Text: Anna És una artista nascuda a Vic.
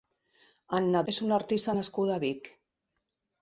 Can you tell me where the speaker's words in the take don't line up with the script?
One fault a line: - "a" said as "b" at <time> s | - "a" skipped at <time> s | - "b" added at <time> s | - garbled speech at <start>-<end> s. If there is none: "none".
none